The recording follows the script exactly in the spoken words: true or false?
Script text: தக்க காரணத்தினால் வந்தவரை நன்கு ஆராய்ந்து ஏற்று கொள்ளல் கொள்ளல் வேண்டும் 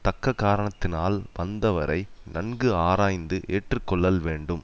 false